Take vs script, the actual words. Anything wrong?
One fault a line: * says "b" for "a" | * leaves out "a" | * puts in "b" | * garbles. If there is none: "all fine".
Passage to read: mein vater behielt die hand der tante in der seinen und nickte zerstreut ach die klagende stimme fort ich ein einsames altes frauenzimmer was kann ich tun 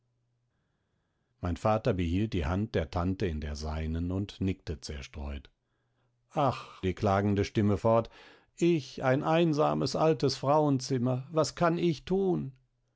all fine